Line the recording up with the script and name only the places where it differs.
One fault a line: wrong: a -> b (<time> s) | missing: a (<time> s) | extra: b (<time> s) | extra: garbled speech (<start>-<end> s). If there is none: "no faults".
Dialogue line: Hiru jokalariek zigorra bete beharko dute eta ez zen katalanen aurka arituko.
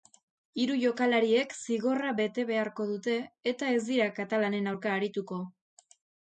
wrong: zen -> dira (3.9 s)